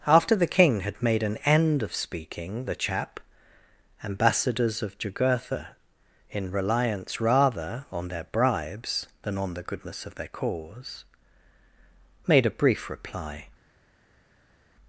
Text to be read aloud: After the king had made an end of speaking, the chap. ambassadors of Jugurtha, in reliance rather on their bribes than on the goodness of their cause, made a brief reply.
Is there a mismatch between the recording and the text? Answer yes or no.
no